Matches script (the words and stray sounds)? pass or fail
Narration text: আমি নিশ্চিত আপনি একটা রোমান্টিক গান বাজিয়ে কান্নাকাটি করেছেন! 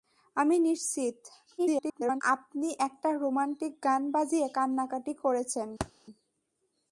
fail